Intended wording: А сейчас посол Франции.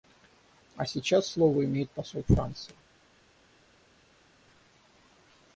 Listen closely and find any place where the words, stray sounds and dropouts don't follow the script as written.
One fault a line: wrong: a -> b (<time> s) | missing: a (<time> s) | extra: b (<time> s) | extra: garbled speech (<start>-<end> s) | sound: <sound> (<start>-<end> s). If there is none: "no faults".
extra: слово имеет (1.3 s)